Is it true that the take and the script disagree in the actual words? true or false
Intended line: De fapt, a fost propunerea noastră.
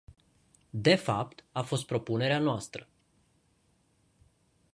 false